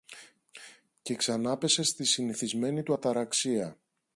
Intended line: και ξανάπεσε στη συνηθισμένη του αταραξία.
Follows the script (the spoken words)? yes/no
yes